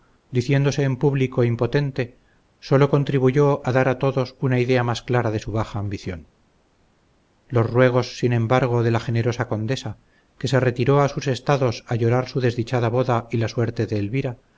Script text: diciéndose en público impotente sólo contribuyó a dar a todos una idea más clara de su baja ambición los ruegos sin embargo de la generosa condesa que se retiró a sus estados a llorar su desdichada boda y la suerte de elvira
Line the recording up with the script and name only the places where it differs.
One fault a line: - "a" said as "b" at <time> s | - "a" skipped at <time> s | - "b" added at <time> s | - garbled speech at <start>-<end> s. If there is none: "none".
none